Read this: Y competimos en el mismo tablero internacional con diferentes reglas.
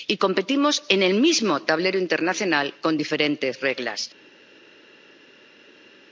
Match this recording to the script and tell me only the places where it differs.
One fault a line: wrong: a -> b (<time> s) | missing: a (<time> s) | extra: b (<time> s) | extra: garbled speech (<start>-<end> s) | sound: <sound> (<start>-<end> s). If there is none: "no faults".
no faults